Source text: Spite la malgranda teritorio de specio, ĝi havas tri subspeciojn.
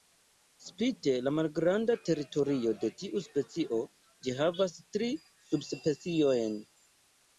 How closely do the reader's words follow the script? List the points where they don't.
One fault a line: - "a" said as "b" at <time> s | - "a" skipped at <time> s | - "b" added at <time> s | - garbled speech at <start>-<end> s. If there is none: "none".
- "tiu" added at 3.0 s